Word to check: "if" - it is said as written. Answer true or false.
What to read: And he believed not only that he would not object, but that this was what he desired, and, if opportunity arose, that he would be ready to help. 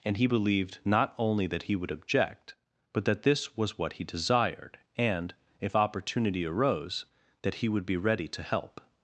true